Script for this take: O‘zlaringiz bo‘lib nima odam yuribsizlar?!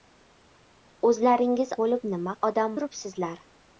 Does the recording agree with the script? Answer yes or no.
yes